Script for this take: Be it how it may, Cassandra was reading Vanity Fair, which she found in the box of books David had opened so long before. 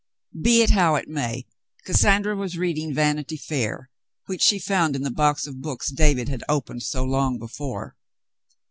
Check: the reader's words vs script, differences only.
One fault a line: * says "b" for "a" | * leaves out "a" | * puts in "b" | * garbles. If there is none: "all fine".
all fine